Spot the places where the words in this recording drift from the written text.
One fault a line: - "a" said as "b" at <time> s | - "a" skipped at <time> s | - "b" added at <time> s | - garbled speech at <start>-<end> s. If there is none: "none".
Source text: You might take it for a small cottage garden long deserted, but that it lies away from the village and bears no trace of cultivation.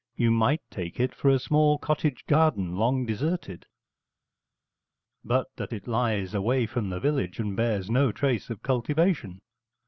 none